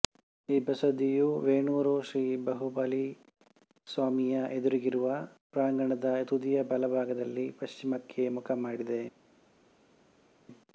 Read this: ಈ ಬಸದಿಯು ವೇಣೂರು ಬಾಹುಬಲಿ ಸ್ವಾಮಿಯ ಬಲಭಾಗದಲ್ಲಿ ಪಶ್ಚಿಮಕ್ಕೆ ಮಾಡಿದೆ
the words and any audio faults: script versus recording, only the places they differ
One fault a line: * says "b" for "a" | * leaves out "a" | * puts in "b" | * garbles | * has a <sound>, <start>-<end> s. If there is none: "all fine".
* puts in "ಶ್ರೀ"
* puts in "ಎದುರಿಗಿರುವ ಪ್ರಾಂಗಣದ ತುದಿಯ"
* puts in "ಮುಖ"